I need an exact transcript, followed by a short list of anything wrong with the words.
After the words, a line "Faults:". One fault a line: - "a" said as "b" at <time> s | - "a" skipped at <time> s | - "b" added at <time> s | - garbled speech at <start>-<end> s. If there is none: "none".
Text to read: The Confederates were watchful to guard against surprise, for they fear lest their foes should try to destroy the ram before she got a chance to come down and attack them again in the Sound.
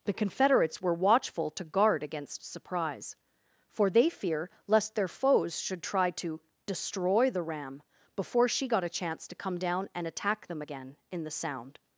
The Confederates were watchful to guard against surprise, for they fear lest their foes should try to destroy the ram before she got a chance to come down and attack them again in the Sound.
Faults:
none